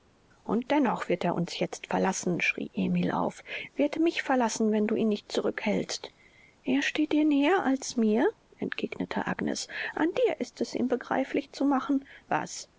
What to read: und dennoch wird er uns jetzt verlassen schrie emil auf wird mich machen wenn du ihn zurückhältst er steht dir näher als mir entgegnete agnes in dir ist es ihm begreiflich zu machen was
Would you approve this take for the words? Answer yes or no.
no